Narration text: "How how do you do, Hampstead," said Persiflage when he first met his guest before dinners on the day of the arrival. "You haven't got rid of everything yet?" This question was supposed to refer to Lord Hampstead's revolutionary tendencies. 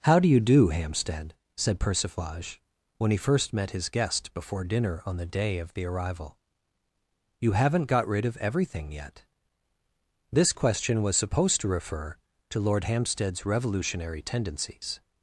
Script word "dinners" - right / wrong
wrong